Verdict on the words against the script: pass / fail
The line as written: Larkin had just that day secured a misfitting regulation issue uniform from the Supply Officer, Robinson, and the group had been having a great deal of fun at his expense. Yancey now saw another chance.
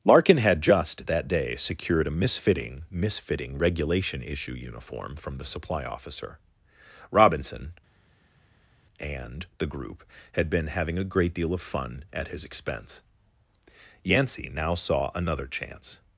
fail